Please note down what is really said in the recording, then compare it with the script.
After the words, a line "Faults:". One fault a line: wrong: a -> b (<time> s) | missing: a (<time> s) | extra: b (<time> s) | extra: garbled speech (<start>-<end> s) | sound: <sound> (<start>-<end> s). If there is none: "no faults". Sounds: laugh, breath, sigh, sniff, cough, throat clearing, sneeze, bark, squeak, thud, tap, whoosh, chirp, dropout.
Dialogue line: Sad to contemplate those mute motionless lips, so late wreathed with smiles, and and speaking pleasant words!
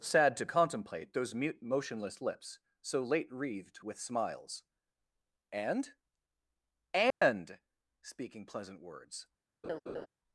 Sad to contemplate those mute motionless lips, so late wreathed with smiles, and and speaking pleasant words!
Faults:
sound: dropout (7.1-7.2 s)
sound: laugh (9.6-10.1 s)